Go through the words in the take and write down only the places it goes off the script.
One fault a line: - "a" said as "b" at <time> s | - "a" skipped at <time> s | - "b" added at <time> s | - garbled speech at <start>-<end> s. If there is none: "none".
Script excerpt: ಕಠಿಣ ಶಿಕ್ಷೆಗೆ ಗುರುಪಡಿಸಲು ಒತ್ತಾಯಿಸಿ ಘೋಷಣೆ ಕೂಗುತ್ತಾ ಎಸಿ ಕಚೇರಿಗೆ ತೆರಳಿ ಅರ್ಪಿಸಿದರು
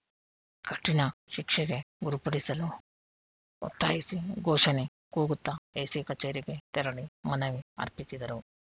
- "ಮನವಿ" added at 7.2 s